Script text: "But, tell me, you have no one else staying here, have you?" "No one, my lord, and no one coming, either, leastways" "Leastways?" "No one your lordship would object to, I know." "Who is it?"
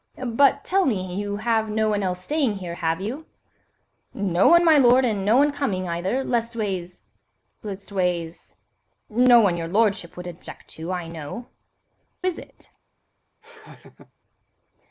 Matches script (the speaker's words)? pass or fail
fail